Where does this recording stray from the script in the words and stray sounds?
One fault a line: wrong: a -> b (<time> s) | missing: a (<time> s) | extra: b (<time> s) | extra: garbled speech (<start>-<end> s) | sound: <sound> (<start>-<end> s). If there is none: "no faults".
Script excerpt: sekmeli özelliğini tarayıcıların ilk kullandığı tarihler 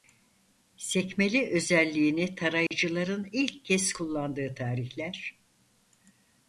sound: dropout (2.7-2.7 s)
extra: kez (3.6 s)